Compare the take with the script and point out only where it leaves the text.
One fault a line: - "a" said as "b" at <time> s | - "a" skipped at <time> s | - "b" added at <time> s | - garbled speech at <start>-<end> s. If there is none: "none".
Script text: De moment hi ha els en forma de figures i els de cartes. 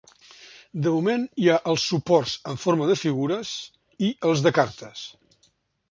- "suports" added at 1.9 s